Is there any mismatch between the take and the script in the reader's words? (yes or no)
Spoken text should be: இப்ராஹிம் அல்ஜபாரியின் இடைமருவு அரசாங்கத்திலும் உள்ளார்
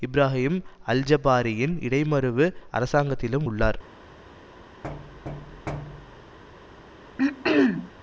no